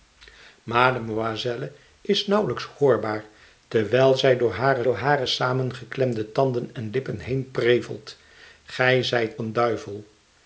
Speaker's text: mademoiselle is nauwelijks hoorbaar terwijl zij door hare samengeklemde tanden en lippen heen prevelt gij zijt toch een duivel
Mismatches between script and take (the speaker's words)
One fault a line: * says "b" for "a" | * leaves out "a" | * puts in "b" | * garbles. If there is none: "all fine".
* puts in "door hare"
* leaves out "toch"